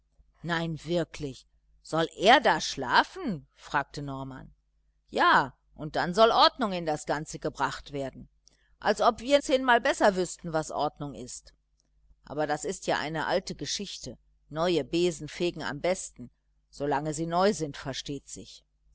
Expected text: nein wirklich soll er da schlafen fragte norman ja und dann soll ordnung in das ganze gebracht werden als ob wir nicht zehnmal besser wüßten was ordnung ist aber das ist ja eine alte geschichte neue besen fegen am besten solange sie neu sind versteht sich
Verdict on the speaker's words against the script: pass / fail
fail